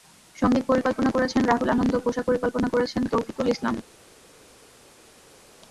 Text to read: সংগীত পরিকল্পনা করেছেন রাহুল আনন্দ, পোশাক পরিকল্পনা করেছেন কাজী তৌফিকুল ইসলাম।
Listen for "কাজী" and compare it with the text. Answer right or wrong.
wrong